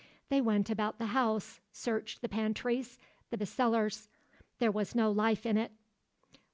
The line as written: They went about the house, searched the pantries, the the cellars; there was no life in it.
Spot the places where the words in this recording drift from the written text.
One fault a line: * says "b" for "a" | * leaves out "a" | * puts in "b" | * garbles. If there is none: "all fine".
all fine